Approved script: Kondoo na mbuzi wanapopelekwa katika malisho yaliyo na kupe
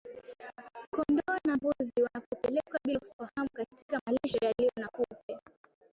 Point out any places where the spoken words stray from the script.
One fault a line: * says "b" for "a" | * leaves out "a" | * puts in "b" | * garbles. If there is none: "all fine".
* puts in "bila ufahamu"